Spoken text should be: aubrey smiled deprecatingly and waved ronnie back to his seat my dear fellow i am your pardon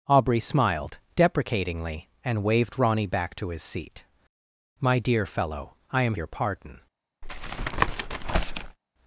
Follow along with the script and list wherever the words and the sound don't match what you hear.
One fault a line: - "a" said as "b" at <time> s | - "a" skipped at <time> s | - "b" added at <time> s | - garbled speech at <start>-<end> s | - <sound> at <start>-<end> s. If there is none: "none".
- tap at 7.2-8.8 s